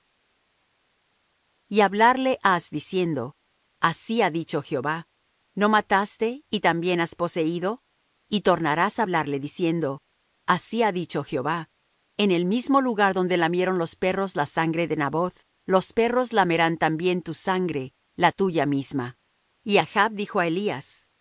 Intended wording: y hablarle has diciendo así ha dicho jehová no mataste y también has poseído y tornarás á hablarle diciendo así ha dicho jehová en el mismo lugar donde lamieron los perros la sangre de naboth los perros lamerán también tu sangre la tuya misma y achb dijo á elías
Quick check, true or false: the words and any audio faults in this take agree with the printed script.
true